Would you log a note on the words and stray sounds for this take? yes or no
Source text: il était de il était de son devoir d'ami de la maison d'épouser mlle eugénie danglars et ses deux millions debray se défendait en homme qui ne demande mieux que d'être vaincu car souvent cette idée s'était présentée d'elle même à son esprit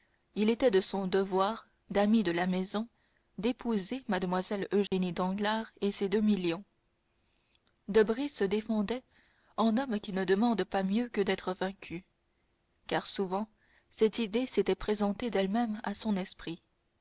yes